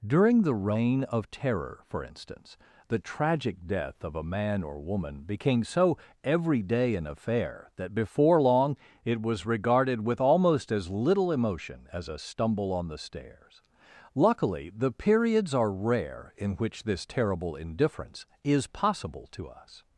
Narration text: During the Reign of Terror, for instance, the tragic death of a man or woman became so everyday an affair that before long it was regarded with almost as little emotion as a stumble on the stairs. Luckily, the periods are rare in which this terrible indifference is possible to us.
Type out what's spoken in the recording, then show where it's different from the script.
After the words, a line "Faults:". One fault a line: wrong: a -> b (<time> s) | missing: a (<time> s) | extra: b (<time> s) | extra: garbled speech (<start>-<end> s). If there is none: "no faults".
During the Reign of Terror, for instance, the tragic death of a man or woman became so everyday an affair that before long it was regarded with almost as little emotion as a stumble on the stairs. Luckily, the periods are rare in which this terrible indifference is possible to us.
Faults:
no faults